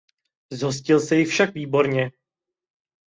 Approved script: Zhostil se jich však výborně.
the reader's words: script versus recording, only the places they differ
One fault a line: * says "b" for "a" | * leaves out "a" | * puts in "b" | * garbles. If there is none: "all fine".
all fine